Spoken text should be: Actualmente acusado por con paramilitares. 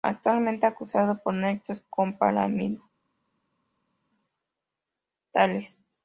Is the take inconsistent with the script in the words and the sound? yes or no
yes